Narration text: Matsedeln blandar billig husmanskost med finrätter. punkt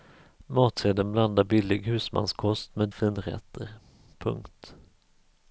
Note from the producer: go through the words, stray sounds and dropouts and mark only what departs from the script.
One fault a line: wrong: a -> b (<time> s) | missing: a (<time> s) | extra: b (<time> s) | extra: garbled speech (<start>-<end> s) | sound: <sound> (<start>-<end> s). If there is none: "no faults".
no faults